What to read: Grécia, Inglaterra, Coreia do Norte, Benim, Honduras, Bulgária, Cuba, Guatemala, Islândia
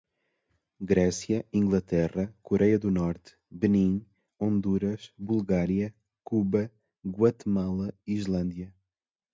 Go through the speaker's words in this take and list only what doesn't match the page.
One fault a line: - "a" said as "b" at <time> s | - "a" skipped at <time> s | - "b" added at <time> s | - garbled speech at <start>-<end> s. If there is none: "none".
none